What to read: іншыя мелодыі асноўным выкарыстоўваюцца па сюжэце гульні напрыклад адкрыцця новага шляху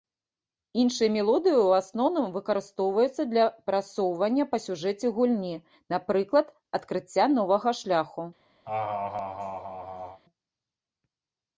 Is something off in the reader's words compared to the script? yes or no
yes